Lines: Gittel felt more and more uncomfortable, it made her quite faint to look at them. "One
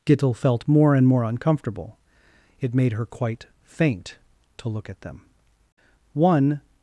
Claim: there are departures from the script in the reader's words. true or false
false